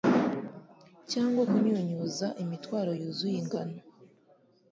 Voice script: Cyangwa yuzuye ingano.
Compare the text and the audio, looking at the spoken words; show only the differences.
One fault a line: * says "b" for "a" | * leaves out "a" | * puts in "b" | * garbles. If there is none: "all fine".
* puts in "kunyunyuza imitwaro"